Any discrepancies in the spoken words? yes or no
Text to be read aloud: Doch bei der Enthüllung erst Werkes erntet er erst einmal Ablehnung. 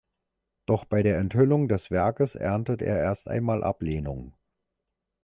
yes